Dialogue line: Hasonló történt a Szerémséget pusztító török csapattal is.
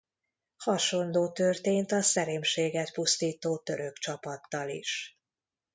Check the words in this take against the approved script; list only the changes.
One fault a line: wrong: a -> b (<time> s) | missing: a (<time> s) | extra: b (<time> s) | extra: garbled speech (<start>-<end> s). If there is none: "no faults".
no faults